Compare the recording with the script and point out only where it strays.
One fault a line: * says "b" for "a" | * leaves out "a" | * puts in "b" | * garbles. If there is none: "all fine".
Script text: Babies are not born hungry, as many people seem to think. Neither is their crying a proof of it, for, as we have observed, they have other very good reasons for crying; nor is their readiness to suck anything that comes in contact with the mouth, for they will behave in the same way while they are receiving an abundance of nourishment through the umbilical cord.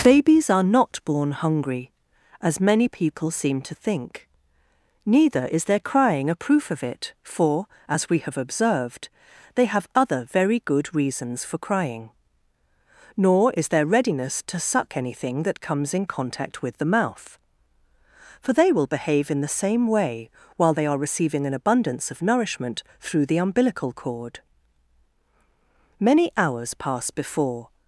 * puts in "Many hours pass before"